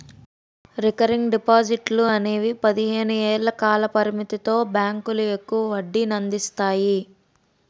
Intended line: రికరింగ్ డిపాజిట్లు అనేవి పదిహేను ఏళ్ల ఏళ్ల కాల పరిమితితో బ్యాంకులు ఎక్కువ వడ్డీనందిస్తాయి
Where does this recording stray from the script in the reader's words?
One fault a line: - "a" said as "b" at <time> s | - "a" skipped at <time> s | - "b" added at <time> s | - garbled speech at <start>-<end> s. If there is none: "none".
- "ఏళ్ల" skipped at 3.5 s